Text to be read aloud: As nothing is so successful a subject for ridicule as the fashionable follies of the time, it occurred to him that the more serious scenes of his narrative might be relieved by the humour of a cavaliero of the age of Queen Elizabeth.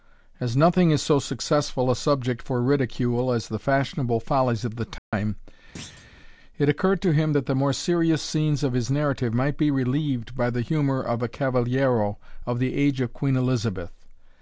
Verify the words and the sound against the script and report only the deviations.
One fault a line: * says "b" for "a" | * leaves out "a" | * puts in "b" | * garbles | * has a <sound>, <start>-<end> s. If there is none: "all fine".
* has a dropout, 5.0-5.1 s
* has a thud, 5.7-6.1 s